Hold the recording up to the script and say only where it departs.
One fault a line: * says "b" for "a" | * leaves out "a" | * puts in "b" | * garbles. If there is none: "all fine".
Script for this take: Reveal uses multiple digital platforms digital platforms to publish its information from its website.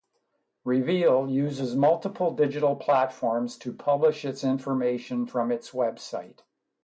* leaves out "digital platforms"